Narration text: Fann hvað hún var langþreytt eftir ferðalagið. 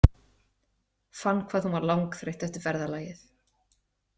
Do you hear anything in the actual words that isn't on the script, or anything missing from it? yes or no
no